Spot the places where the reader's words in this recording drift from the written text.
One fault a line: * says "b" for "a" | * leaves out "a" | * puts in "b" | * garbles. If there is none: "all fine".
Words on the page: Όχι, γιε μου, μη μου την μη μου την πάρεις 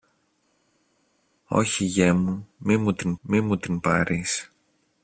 all fine